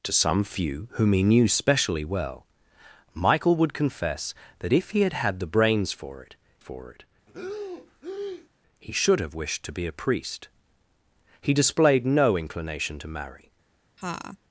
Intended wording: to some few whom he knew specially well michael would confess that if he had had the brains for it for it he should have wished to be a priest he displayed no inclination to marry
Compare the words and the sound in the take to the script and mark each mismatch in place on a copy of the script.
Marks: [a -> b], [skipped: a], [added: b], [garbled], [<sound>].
to some few whom he knew specially well michael would confess that if he had had the brains for it for it [breath] he should have wished to be a priest he displayed no inclination to marry [laugh]